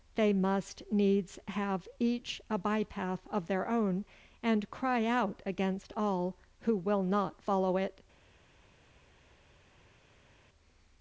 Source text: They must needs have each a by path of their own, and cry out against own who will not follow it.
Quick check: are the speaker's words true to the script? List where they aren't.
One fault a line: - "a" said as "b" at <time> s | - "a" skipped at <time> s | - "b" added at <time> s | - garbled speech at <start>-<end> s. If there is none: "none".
- "own" said as "all" at 5.9 s